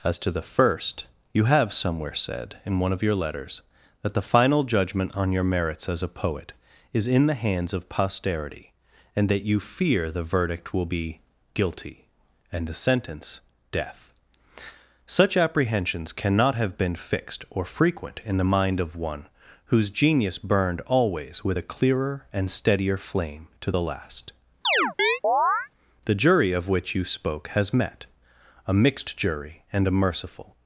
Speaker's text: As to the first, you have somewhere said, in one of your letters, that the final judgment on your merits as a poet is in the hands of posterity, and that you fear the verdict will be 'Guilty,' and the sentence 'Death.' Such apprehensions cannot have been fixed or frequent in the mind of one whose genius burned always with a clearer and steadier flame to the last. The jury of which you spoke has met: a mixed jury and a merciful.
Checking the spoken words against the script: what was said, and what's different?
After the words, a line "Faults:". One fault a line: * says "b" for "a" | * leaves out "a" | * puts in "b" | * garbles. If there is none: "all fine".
As to the first, you have somewhere said, in one of your letters, that the final judgment on your merits as a poet is in the hands of posterity, and that you fear the verdict will be 'Guilty,' and the sentence 'Death.' Such apprehensions cannot have been fixed or frequent in the mind of one whose genius burned always with a clearer and steadier flame to the last. The jury of which you spoke has met: a mixed jury and a merciful.
Faults:
all fine